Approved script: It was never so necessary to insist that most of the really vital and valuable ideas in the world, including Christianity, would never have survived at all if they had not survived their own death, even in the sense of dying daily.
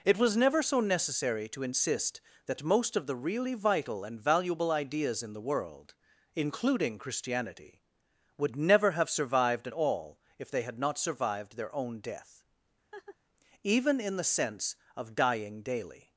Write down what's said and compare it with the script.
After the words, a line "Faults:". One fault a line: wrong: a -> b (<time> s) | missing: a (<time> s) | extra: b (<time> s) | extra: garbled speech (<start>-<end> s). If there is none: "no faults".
It was never so necessary to insist that most of the really vital and valuable ideas in the world, including Christianity, would never have survived at all if they had not survived their own death, even in the sense of dying daily.
Faults:
no faults